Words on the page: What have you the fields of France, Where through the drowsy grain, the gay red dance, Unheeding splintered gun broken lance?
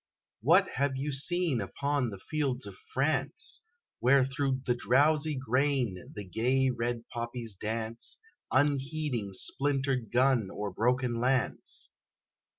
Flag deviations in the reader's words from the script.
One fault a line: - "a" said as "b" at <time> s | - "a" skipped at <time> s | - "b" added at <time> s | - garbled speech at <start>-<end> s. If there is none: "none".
- "seen upon" added at 1.1 s
- "poppies" added at 7.1 s
- "or" added at 10.5 s